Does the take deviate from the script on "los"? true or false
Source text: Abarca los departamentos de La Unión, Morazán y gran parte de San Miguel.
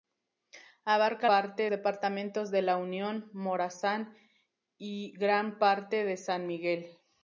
true